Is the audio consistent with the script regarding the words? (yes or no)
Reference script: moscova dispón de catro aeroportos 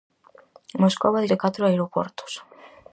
no